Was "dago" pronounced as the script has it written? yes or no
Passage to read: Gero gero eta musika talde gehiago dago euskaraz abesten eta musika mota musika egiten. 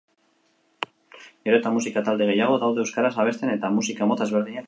no